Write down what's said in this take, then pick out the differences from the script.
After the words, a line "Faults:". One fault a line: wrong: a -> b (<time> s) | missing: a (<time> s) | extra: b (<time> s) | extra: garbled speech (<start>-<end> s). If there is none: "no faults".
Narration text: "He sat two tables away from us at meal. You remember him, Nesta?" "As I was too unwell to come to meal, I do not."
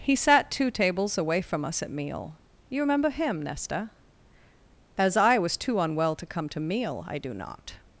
"He sat two tables away from us at meal. You remember him, Nesta?" "As I was too unwell to come to meal, I do not."
Faults:
no faults